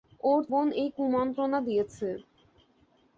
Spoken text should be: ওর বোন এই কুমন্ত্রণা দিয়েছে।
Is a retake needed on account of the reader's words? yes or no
no